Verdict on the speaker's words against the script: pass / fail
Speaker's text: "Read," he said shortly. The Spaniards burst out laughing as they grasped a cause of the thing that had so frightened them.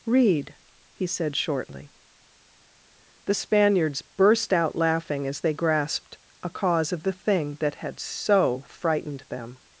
pass